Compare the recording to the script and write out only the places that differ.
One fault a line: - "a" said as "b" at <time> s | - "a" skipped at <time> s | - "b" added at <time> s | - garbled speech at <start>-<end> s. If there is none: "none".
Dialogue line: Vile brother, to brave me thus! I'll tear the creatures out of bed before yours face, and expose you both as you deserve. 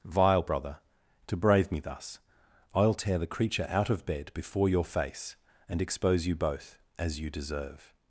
- "creatures" said as "creature" at 3.3 s
- "yours" said as "your" at 4.7 s